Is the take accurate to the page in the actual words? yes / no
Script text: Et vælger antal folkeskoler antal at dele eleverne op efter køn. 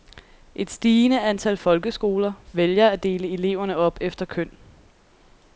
no